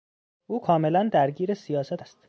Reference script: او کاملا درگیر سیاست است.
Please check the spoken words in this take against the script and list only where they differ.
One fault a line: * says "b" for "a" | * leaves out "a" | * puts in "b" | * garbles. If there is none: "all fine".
all fine